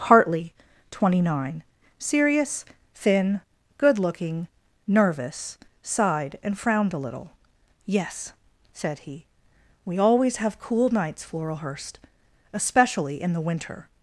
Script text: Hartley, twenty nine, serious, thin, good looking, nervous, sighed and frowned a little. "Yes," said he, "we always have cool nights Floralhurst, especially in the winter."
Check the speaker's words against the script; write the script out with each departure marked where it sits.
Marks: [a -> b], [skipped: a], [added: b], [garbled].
Hartley, twenty nine, serious, thin, good looking, nervous, sighed and frowned a little. "Yes," said he, "we always have cool nights Floralhurst, especially in the winter."